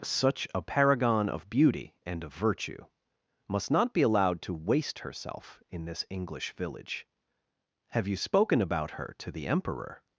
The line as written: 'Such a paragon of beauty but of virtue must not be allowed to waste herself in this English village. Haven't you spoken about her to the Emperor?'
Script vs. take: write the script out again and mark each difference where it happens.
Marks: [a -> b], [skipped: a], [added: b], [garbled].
'Such a paragon of beauty [but -> and] of virtue must not be allowed to waste herself in this English village. [Haven't -> Have] you spoken about her to the Emperor?'